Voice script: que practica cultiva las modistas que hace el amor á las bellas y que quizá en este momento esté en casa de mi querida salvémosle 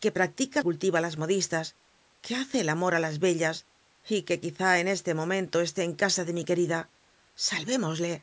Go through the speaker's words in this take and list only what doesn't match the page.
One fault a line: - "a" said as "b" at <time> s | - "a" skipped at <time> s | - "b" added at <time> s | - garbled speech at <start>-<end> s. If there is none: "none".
none